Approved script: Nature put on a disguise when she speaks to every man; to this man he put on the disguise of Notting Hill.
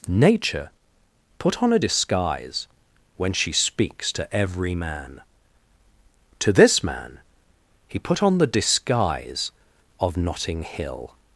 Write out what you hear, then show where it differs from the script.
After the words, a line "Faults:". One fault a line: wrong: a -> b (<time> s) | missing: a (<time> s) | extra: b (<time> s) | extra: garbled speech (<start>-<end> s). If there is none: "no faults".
Nature put on a disguise when she speaks to every man; to this man he put on the disguise of Notting Hill.
Faults:
no faults